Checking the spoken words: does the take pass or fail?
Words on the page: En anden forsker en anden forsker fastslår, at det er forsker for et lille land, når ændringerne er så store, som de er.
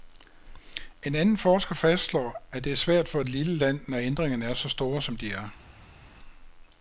fail